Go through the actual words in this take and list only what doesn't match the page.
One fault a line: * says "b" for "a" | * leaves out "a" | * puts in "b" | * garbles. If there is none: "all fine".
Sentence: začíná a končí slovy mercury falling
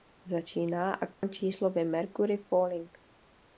all fine